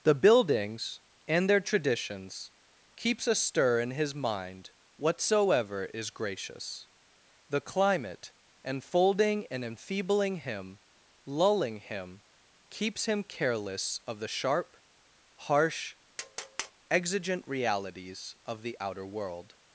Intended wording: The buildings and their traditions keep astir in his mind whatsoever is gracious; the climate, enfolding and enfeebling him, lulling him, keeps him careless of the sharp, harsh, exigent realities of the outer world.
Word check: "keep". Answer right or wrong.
wrong